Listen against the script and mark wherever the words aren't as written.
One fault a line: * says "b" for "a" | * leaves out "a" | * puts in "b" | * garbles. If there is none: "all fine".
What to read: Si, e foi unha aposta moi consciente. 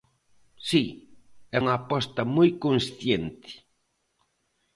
* leaves out "foi"